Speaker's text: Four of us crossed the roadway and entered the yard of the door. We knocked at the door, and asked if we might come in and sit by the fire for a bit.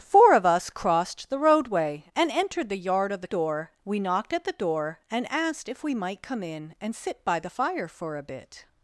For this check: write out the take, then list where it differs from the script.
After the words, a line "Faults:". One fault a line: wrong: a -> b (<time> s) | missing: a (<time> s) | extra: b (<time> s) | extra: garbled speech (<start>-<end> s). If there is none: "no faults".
Four of us crossed the roadway and entered the yard of the door. We knocked at the door, and asked if we might come in and sit by the fire for a bit.
Faults:
no faults